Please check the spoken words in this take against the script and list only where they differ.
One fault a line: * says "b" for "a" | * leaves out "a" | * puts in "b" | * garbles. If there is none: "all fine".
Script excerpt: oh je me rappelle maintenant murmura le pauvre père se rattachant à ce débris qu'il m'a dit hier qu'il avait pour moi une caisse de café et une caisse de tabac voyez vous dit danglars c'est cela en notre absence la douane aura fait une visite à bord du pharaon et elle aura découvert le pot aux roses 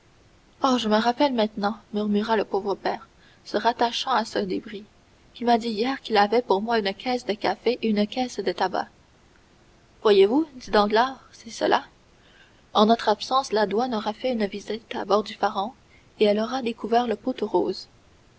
all fine